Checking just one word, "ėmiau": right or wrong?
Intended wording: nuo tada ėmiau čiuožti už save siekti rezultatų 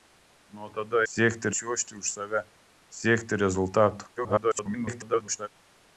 wrong